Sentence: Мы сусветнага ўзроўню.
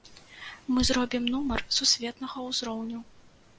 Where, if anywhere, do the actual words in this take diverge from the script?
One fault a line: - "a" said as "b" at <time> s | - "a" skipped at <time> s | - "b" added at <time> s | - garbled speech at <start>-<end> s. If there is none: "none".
- "зробім нумар" added at 0.9 s